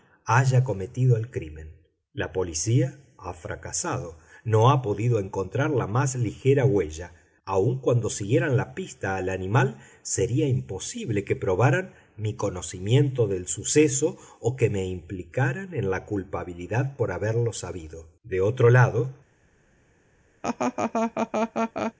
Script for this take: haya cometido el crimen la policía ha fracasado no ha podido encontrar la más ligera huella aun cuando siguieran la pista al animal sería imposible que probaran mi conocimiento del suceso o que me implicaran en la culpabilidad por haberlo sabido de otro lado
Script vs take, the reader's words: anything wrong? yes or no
no